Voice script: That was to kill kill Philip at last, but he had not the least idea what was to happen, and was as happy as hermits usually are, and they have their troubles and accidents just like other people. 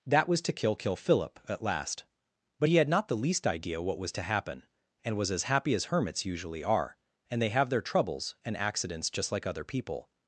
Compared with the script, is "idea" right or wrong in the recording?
right